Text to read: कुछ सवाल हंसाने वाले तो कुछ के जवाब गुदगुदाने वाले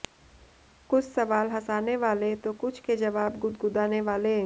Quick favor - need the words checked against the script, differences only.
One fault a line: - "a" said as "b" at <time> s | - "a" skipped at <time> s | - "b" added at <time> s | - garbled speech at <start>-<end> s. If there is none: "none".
none